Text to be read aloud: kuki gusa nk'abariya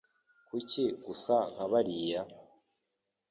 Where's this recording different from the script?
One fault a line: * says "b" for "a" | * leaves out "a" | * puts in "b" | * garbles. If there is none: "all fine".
all fine